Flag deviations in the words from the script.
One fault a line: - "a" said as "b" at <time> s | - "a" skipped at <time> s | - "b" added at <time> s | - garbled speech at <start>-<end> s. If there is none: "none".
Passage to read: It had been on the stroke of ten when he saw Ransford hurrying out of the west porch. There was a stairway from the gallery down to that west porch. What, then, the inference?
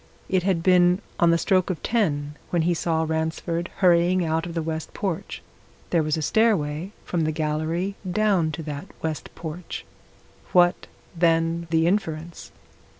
none